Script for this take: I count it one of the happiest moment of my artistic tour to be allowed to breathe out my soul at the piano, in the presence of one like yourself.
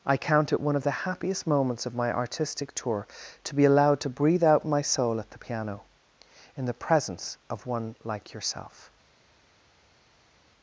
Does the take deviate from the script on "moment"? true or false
true